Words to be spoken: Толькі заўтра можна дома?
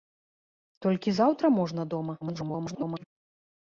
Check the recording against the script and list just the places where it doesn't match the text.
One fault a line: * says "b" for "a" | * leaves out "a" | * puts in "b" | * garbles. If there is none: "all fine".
* garbles